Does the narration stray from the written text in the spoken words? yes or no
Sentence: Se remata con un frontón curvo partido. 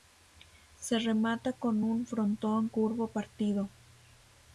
no